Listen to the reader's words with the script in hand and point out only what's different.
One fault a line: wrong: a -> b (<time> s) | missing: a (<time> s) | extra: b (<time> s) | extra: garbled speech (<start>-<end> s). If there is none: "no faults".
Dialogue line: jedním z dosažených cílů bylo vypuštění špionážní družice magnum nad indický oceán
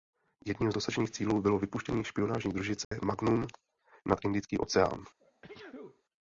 no faults